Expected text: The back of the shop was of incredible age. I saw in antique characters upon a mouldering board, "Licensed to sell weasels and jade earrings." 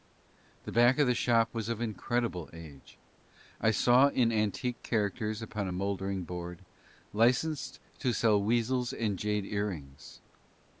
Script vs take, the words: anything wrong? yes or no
no